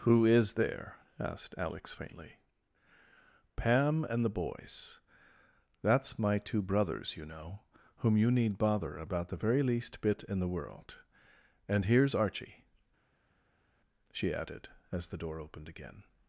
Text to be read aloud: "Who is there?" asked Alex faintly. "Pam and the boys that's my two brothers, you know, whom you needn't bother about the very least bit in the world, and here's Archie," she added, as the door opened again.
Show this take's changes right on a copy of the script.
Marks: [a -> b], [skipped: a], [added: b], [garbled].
"Who is there?" asked Alex faintly. "Pam and the boys that's my two brothers, you know, whom you [needn't -> need] bother about the very least bit in the world, and here's Archie," she added, as the door opened again.